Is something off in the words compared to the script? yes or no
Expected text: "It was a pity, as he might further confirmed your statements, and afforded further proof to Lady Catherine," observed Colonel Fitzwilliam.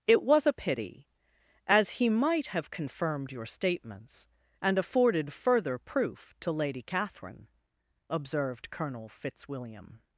yes